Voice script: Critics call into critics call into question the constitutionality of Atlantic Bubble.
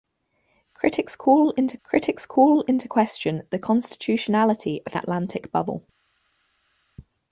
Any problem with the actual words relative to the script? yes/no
no